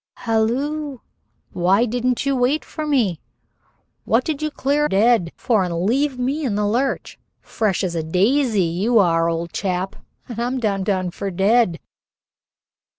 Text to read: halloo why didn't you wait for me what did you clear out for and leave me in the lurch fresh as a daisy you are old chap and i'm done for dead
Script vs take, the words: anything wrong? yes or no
yes